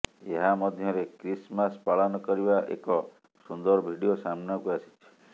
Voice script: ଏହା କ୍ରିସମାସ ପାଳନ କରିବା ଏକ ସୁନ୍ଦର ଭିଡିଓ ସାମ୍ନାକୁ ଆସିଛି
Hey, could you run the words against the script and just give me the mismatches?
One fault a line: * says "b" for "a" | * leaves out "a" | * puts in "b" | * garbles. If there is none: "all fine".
* puts in "ମଧ୍ୟରେ"